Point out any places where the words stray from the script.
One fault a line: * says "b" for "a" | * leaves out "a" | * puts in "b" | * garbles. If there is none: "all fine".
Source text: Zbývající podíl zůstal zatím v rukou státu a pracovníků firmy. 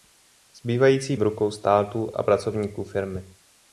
* leaves out "podíl zůstal zatím"